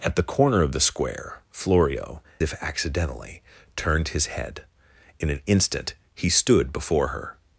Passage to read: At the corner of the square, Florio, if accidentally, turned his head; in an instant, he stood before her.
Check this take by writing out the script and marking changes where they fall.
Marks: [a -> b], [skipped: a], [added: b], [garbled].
At the corner of the square, Florio, if accidentally, turned his head; in an instant, he stood before her.